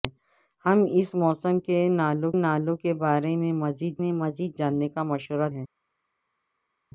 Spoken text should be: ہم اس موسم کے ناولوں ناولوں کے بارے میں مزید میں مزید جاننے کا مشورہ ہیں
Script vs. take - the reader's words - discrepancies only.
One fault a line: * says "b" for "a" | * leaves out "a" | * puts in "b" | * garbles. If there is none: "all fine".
all fine